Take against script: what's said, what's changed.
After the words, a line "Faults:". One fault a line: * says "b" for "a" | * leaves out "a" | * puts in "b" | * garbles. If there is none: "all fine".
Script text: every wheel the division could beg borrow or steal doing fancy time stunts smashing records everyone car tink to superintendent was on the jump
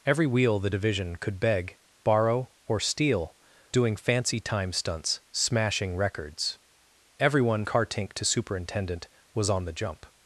every wheel the division could beg borrow or steal doing fancy time stunts smashing records everyone car tink to superintendent was on the jump
Faults:
all fine